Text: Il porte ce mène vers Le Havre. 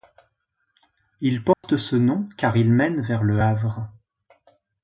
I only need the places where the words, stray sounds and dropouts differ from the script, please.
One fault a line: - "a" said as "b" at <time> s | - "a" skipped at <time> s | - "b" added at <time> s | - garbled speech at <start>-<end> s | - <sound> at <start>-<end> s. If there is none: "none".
- dropout at 1.5-1.6 s
- "nom car il" added at 1.9 s